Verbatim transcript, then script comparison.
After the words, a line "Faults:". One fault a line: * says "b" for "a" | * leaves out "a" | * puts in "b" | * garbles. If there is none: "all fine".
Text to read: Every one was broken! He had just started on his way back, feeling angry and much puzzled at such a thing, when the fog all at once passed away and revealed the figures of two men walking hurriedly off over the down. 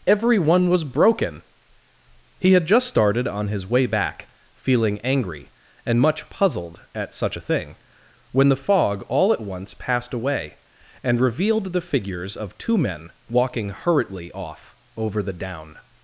Every one was broken! He had just started on his way back, feeling angry and much puzzled at such a thing, when the fog all at once passed away and revealed the figures of two men walking hurriedly off over the down.
Faults:
all fine